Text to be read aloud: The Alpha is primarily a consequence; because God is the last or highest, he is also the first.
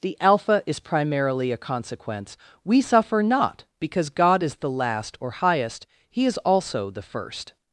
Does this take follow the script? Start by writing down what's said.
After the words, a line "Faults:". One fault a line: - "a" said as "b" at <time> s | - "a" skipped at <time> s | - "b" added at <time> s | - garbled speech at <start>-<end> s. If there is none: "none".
The Alpha is primarily a consequence; we suffer not because God is the last or highest, he is also the first.
Faults:
- "we suffer not" added at 2.6 s